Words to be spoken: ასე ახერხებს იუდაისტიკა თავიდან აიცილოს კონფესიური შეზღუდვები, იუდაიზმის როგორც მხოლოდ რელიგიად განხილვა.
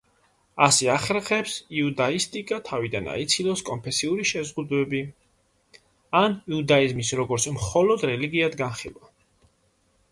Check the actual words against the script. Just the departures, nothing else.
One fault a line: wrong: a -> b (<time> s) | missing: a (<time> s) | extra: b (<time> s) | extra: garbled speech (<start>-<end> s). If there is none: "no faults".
extra: ან (6.2 s)